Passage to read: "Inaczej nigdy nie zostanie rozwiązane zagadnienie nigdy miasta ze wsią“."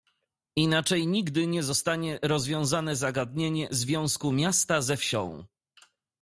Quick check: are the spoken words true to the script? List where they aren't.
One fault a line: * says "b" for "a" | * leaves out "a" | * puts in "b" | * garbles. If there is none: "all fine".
* says "związku" for "nigdy"